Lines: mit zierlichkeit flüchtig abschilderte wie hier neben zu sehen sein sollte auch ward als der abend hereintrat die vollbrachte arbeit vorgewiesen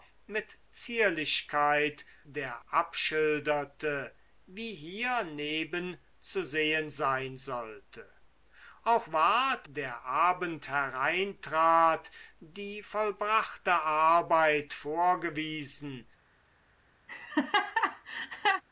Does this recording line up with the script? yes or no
no